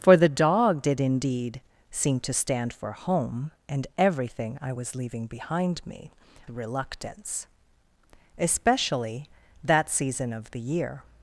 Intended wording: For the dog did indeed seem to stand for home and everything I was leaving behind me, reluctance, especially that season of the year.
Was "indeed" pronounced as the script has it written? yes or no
yes